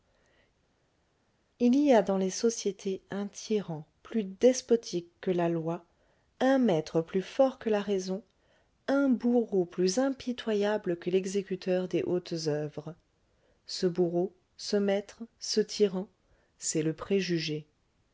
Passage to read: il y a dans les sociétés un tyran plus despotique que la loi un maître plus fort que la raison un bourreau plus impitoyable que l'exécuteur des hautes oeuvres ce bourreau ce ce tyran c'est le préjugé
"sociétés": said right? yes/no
yes